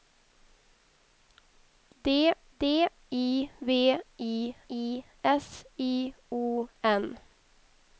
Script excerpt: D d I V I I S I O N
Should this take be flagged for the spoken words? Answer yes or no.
no